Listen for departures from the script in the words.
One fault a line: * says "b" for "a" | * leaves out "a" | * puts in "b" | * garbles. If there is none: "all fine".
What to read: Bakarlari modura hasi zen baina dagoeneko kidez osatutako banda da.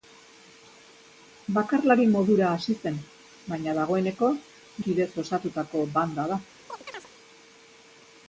all fine